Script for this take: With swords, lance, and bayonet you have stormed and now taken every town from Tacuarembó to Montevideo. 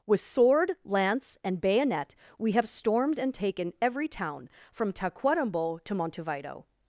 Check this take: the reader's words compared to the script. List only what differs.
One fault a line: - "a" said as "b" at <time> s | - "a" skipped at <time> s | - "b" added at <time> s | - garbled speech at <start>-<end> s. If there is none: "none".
- "swords" said as "sword" at 0.2 s
- "you" said as "we" at 2.4 s
- "now" skipped at 3.3 s